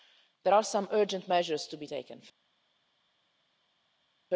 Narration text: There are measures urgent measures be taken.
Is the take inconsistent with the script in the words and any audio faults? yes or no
yes